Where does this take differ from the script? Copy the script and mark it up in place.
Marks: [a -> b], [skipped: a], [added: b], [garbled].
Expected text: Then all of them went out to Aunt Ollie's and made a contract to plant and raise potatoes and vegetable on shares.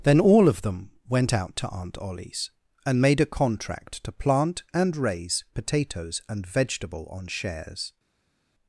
Then all of them went out to Aunt Ollie's and made a contract to plant and raise potatoes and vegetable on shares.